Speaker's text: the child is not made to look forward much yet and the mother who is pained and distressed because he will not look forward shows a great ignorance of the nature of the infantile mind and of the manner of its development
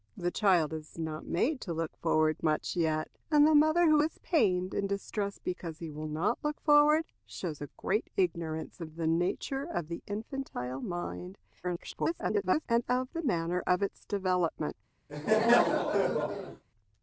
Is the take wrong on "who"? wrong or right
right